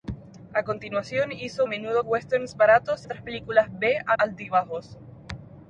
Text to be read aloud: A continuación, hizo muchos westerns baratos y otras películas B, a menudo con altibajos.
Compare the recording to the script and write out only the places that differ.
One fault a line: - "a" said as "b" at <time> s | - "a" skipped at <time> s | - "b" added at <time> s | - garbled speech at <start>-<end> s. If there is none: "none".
- "muchos" said as "menudo" at 1.6 s
- "y" skipped at 3.1 s
- "menudo con" skipped at 4.1 s